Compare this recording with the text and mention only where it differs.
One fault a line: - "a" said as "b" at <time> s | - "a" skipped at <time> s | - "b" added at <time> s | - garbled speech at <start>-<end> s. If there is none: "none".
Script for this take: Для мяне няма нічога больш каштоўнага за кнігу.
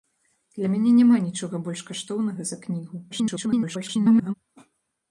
- garbled speech at 3.1-4.3 s